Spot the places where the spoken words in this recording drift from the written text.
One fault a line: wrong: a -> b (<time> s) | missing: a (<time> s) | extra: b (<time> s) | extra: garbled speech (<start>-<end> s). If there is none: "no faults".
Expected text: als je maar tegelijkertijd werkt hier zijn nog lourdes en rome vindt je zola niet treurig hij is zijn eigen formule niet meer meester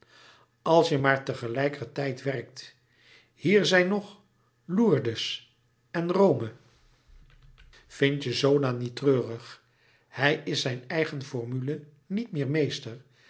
no faults